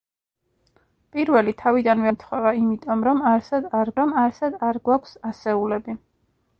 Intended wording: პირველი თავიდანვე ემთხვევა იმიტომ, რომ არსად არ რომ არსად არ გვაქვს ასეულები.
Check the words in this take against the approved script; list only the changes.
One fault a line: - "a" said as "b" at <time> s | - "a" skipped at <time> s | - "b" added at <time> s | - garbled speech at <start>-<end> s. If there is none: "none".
none